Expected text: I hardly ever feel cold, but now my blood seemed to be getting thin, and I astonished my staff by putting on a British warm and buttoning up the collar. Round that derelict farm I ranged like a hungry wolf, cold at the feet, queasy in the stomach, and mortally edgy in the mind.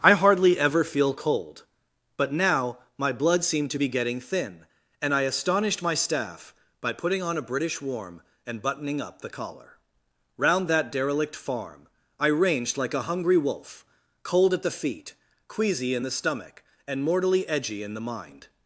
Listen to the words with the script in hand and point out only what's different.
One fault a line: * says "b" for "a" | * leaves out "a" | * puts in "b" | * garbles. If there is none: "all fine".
all fine